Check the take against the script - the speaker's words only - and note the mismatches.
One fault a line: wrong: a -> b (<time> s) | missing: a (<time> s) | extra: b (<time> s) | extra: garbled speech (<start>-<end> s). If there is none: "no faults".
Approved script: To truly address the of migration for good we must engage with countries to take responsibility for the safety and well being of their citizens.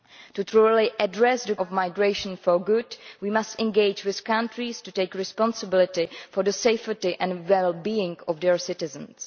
no faults